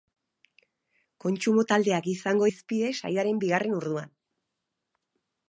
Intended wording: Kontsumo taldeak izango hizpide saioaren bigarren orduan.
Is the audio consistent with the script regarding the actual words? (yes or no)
yes